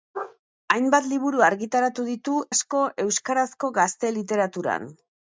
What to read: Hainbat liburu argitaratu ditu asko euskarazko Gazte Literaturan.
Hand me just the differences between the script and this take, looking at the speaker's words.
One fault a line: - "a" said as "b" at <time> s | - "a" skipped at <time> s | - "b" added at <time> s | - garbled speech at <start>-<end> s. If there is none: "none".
none